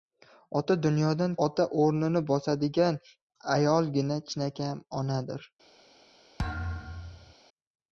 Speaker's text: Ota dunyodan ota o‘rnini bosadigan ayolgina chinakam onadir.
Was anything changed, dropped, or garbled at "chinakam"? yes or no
no